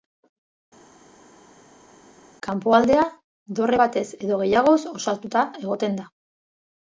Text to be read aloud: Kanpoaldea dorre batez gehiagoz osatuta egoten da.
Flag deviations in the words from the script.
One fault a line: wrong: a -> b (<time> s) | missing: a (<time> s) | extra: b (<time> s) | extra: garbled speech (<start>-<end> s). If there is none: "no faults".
extra: edo (4.2 s)